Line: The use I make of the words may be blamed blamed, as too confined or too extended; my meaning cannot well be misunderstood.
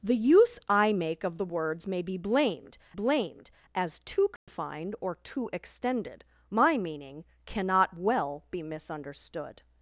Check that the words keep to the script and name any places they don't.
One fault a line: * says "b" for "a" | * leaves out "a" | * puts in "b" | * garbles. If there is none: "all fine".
all fine